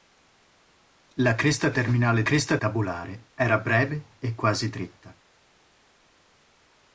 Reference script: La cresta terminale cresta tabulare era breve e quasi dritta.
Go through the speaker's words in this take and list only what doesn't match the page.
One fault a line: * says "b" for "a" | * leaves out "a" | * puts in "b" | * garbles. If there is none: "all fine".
all fine